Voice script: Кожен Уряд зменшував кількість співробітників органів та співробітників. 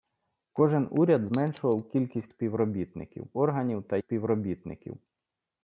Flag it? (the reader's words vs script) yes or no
no